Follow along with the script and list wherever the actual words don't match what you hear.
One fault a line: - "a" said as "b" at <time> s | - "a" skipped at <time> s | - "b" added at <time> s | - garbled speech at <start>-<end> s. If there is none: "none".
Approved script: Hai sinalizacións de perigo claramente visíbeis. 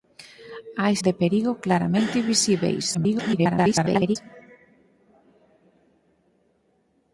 - "sinalizacións" skipped at 0.9 s
- garbled speech at 2.9-4.2 s